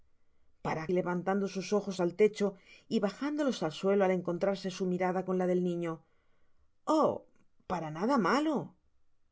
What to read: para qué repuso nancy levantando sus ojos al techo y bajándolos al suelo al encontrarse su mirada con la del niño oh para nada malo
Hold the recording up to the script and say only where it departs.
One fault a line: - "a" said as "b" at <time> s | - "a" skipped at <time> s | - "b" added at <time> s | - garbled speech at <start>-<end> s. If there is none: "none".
- "qué repuso nancy" skipped at 0.8 s